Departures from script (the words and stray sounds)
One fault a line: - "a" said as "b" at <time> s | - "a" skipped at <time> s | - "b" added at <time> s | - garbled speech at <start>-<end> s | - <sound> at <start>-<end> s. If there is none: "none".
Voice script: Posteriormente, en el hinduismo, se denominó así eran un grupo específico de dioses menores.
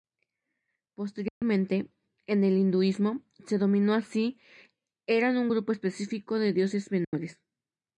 - dropout at 1.3-1.4 s
- dropout at 7.0-7.1 s